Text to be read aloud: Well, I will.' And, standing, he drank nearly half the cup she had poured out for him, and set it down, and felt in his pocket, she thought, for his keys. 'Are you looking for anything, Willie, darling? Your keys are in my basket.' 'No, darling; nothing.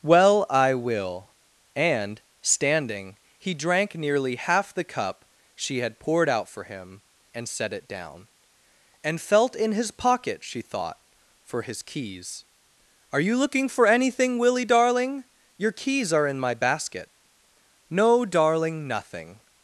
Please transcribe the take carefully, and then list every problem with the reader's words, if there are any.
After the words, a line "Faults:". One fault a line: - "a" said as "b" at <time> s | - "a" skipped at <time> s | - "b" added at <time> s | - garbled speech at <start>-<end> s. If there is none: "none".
Well, I will.' And, standing, he drank nearly half the cup she had poured out for him, and set it down, and felt in his pocket, she thought, for his keys. 'Are you looking for anything, Willie, darling? Your keys are in my basket.' 'No, darling; nothing.
Faults:
none